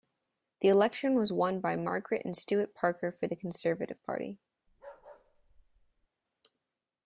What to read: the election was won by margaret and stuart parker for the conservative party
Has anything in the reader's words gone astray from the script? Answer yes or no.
no